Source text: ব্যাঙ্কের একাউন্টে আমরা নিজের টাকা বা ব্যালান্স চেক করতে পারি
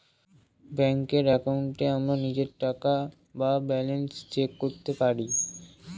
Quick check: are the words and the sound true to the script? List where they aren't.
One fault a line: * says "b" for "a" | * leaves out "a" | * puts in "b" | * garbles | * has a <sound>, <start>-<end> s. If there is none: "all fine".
all fine